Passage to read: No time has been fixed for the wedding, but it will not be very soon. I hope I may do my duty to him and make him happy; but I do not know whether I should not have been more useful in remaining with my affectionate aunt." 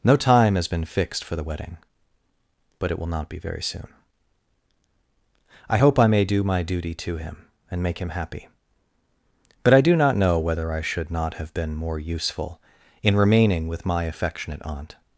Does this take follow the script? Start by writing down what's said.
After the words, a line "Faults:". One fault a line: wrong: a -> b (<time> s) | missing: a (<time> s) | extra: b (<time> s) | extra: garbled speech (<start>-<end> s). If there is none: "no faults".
No time has been fixed for the wedding, but it will not be very soon. I hope I may do my duty to him and make him happy; but I do not know whether I should not have been more useful in remaining with my affectionate aunt."
Faults:
no faults